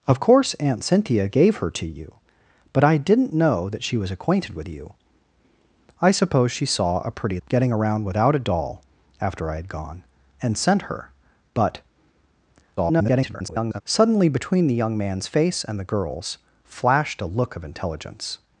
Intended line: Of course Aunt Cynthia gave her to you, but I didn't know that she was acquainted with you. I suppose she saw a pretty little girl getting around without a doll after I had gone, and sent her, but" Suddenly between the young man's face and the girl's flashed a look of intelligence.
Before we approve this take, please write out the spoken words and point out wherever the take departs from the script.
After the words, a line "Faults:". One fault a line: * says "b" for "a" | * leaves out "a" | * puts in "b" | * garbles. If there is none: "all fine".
Of course Aunt Cynthia gave her to you, but I didn't know that she was acquainted with you. I suppose she saw a pretty getting around without a doll after I had gone, and sent her, but" [garbled] Suddenly between the young man's face and the girl's flashed a look of intelligence.
Faults:
* leaves out "little girl"
* garbles